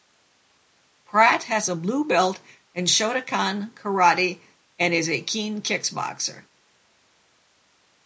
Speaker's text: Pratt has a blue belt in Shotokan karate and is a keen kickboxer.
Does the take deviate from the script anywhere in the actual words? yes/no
no